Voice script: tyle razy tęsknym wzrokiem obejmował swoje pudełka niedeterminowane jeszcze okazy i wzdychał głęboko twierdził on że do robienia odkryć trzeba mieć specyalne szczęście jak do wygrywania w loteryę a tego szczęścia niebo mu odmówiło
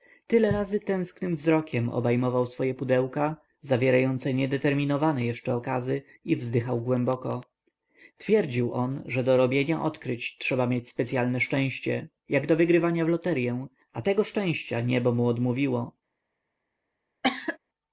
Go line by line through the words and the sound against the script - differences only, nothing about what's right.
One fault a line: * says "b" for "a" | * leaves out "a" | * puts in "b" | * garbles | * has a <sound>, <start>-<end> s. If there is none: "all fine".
* puts in "zawierające"
* has a cough, 17.2-17.6 s